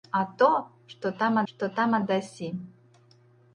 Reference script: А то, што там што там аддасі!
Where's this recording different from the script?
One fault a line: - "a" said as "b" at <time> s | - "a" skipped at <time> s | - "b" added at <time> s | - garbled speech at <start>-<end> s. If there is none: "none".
none